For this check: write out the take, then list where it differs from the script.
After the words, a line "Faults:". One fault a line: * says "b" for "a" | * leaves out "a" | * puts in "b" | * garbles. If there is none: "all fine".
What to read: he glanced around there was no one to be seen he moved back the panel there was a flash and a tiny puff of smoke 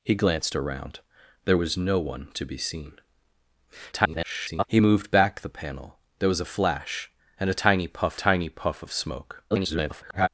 he glanced around there was no one to be seen [garbled] he moved back the panel there was a flash and a tiny puff tiny puff of smoke [garbled]
Faults:
* garbles
* puts in "tiny puff"
* garbles